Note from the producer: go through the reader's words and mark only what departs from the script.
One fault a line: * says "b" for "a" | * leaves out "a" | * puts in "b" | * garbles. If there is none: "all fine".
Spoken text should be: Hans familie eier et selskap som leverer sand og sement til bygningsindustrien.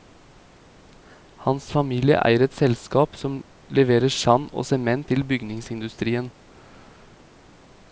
all fine